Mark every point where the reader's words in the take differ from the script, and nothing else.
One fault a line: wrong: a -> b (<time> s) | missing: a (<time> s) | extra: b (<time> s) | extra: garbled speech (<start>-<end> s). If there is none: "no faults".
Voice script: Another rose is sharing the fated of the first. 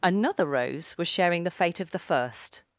wrong: is -> was (1.0 s)
wrong: fated -> fate (1.5 s)